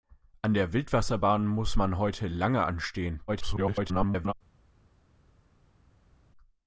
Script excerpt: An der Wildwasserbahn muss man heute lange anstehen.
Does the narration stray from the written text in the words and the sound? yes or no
yes